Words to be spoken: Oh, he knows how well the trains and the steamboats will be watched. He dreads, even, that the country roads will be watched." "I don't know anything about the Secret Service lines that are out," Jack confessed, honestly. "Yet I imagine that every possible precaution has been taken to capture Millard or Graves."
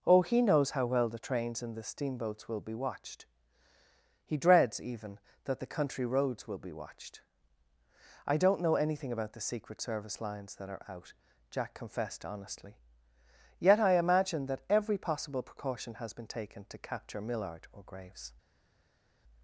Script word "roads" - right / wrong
right